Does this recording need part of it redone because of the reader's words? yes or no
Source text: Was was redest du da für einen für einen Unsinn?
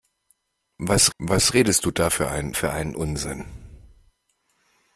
no